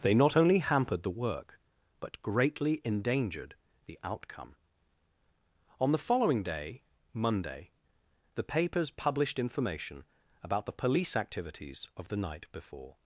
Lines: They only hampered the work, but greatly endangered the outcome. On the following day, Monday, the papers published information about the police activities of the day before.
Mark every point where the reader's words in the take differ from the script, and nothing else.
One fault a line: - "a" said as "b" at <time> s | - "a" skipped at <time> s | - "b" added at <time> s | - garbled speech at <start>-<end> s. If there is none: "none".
- "not" added at 0.1 s
- "day" said as "night" at 12.2 s